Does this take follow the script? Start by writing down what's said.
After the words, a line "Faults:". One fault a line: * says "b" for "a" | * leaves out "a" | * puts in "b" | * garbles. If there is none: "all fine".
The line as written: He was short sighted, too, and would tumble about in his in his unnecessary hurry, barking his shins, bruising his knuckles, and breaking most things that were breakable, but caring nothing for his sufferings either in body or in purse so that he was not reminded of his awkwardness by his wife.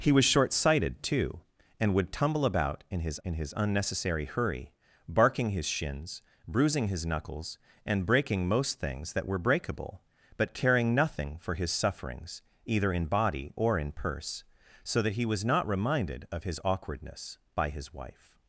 He was short sighted, too, and would tumble about in his in his unnecessary hurry, barking his shins, bruising his knuckles, and breaking most things that were breakable, but caring nothing for his sufferings either in body or in purse so that he was not reminded of his awkwardness by his wife.
Faults:
all fine